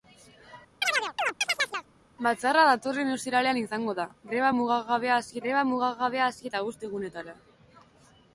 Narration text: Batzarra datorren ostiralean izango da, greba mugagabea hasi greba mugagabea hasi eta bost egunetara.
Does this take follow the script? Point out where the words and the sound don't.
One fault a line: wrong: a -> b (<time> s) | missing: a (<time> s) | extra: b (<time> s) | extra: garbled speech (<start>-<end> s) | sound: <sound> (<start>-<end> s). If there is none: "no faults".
sound: chirp (0.8-1.9 s)